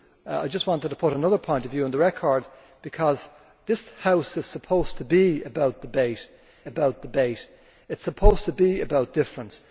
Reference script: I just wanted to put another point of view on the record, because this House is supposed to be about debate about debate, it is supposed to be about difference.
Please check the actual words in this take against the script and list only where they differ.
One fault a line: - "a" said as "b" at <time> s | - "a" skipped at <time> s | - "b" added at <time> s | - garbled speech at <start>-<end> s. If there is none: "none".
none